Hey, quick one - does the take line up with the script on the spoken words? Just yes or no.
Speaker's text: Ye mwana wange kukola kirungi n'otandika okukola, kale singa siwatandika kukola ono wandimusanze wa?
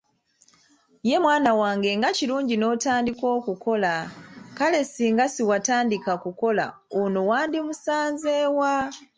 no